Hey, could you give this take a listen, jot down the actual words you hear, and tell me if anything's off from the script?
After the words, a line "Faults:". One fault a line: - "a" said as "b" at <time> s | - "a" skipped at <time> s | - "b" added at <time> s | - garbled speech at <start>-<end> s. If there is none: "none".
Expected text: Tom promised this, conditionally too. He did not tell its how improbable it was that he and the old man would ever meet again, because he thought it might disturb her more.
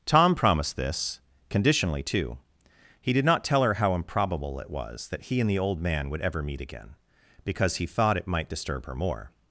Tom promised this, conditionally too. He did not tell her how improbable it was that he and the old man would ever meet again, because he thought it might disturb her more.
Faults:
- "its" said as "her" at 3.6 s